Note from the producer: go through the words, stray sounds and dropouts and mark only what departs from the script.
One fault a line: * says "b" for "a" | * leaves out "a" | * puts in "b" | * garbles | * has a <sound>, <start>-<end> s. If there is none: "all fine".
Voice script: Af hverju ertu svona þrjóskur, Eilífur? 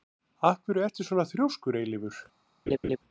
* has a laugh, 2.7-3.0 s